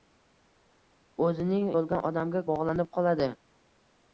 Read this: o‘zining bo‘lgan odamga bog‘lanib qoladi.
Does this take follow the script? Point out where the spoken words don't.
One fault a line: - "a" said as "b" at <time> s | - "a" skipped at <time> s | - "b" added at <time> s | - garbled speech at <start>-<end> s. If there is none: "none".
none